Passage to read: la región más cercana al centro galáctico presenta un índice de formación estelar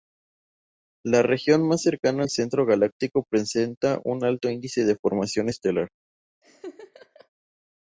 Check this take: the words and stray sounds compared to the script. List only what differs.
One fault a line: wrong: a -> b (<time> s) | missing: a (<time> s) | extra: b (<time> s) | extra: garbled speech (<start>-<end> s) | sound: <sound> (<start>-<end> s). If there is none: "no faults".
extra: alto (4.2 s)
sound: laugh (6.4-7.3 s)